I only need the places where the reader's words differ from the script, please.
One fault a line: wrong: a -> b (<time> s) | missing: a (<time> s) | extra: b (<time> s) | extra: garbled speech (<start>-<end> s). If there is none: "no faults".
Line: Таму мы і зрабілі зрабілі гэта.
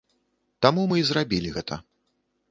missing: зрабілі (1.5 s)